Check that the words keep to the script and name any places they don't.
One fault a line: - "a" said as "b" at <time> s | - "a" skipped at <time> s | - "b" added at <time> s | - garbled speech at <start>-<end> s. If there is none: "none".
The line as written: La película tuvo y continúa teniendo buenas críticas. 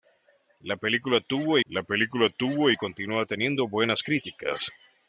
- "la película tuvo" added at 1.7 s